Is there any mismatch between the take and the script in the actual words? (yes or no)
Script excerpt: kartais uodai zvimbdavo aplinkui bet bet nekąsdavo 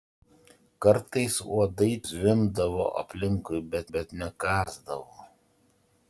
no